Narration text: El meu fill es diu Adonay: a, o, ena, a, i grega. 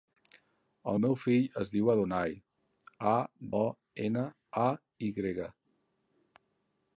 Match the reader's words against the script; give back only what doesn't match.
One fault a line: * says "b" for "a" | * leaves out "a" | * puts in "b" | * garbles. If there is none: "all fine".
all fine